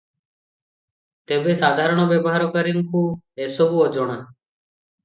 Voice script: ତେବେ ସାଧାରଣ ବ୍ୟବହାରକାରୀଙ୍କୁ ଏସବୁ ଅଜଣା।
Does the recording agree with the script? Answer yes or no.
yes